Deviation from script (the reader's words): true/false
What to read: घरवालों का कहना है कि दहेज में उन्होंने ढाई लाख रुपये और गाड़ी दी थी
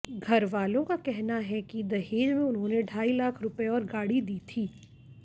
false